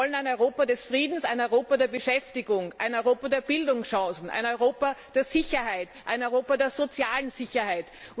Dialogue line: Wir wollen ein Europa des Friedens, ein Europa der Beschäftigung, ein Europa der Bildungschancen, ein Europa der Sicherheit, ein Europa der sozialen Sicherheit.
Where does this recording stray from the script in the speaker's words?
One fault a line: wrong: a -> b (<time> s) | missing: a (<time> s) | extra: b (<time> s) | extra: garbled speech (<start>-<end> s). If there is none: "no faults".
no faults